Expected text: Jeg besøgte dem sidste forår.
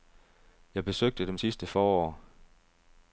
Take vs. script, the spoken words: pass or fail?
pass